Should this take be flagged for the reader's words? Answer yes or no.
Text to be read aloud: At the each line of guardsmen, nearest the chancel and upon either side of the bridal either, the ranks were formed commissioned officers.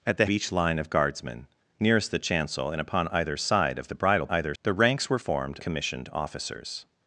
no